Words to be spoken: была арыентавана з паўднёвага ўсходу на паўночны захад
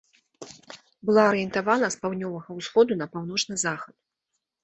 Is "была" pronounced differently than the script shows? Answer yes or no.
no